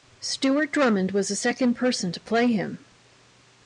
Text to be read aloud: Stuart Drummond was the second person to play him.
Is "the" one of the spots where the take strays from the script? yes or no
no